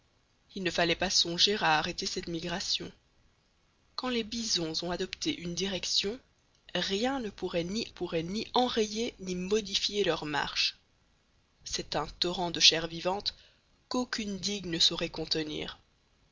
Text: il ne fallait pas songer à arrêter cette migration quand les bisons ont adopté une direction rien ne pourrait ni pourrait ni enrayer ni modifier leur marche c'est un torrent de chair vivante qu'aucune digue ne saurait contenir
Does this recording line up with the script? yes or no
yes